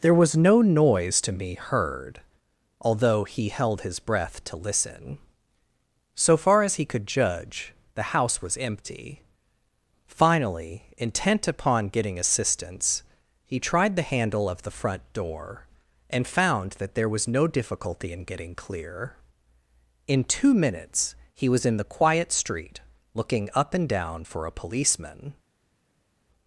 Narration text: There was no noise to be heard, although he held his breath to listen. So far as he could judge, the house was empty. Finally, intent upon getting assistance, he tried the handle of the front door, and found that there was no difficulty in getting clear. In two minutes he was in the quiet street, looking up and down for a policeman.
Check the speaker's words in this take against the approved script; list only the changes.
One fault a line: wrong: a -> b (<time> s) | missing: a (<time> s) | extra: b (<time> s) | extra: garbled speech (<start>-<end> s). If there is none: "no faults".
wrong: be -> me (1.3 s)